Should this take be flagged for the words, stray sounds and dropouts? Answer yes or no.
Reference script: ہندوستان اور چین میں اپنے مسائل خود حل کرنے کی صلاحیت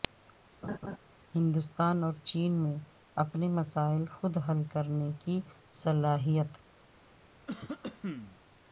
yes